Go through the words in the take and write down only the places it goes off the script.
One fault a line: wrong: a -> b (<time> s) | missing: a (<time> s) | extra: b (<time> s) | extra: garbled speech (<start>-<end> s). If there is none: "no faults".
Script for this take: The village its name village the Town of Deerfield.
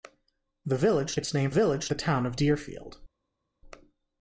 no faults